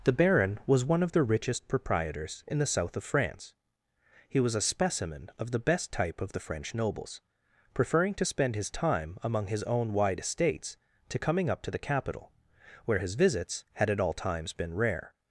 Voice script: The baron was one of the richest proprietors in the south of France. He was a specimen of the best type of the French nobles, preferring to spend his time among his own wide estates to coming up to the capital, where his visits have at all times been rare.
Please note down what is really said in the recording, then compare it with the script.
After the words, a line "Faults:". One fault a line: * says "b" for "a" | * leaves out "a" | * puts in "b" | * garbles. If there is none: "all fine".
The baron was one of the richest proprietors in the south of France. He was a specimen of the best type of the French nobles, preferring to spend his time among his own wide estates to coming up to the capital, where his visits had at all times been rare.
Faults:
* says "had" for "have"